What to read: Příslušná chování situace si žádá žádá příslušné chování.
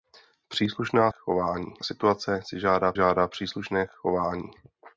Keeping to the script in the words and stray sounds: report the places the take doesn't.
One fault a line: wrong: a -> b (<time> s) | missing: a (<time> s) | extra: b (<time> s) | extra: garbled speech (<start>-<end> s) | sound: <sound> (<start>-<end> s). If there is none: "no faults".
no faults